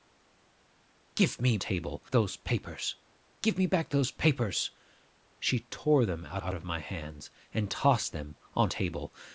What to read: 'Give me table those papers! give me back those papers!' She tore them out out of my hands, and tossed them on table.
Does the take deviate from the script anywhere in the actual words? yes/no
no